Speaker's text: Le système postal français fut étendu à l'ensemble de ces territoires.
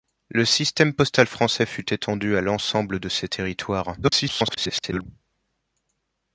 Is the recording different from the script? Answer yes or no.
yes